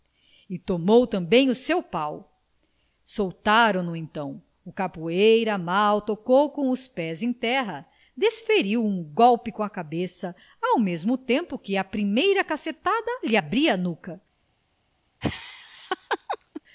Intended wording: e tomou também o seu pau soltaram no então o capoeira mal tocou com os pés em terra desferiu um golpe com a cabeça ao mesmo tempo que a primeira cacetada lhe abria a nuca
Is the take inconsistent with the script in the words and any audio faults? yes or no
yes